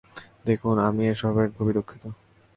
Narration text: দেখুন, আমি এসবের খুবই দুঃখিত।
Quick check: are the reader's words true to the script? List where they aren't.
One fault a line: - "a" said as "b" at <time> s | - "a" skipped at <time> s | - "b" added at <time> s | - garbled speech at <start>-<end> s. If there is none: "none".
none